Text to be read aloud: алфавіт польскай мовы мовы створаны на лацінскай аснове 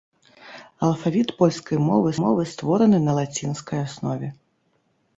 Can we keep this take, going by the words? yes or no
yes